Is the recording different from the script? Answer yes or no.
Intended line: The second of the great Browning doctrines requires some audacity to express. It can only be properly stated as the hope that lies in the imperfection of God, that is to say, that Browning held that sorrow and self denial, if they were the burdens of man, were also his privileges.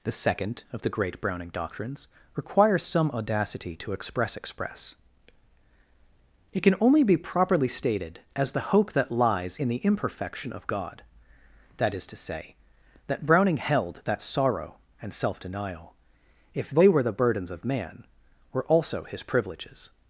yes